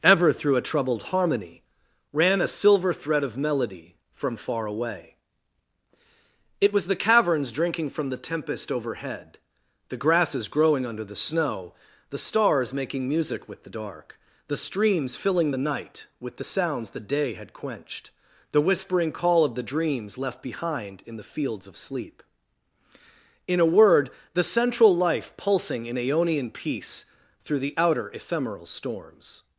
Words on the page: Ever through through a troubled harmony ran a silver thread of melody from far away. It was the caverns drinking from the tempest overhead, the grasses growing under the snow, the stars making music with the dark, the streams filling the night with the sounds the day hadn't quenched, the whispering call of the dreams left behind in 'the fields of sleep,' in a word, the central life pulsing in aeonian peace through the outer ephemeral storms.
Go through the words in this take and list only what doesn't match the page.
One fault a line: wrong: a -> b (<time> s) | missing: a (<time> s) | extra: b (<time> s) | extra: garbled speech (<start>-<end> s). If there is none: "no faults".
missing: through (0.6 s)
wrong: hadn't -> had (17.3 s)